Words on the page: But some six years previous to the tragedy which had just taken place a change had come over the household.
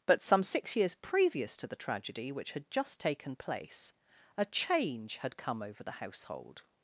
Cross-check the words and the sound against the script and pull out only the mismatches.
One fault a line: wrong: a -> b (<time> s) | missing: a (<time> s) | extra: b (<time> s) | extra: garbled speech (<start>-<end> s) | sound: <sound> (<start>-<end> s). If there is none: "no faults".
no faults